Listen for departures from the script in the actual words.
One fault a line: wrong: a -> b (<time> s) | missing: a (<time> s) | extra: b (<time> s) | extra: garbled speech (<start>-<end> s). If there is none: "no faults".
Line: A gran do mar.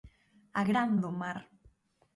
no faults